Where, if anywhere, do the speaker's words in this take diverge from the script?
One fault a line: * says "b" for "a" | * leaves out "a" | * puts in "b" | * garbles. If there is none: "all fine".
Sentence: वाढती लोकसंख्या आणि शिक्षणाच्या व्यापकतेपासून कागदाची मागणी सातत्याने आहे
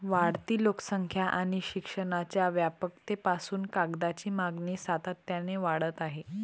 * puts in "वाढत"